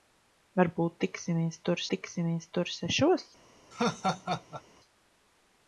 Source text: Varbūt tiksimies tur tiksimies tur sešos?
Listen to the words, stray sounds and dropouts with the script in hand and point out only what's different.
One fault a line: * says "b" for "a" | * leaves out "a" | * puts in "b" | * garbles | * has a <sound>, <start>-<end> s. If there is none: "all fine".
* has a laugh, 3.7-4.6 s